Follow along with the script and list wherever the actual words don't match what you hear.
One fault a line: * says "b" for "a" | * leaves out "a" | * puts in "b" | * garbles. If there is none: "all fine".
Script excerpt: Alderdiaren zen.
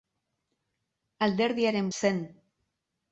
all fine